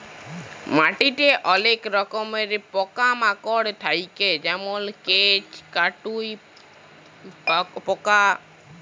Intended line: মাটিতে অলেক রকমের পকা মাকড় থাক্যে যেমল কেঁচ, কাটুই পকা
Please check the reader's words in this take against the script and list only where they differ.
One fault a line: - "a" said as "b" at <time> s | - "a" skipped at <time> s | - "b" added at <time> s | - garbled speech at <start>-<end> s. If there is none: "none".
none